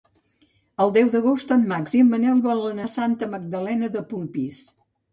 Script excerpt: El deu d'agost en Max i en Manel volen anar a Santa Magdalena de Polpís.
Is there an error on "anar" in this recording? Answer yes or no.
yes